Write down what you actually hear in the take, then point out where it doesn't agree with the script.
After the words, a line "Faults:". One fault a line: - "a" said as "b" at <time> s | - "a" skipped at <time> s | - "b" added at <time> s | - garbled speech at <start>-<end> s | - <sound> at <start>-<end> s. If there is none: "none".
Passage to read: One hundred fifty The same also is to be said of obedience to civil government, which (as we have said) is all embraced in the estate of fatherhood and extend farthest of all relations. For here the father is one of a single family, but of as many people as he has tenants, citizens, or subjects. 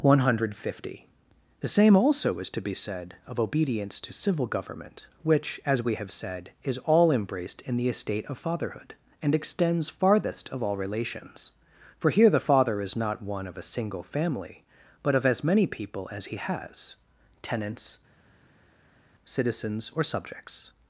One hundred fifty The same also is to be said of obedience to civil government, which (as we have said) is all embraced in the estate of fatherhood and extends farthest of all relations. For here the father is not one of a single family, but of as many people as he has tenants, citizens, or subjects.
Faults:
- "extend" said as "extends" at 9.3 s
- "not" added at 12.9 s